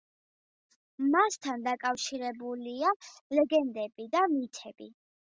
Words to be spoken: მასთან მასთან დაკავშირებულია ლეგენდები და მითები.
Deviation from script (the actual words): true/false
true